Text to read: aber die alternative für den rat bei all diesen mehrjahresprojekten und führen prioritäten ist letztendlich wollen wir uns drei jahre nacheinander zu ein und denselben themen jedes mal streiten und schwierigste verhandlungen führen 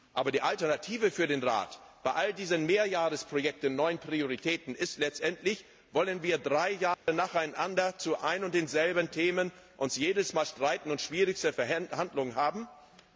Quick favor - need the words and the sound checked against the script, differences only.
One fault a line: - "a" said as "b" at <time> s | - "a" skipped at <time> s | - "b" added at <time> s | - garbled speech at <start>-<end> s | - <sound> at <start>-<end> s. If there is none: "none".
- "führen" said as "neuen" at 3.8 s
- dropout at 6.9-7.1 s